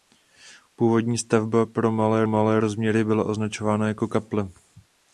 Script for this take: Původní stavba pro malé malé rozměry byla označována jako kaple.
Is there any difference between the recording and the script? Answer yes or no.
no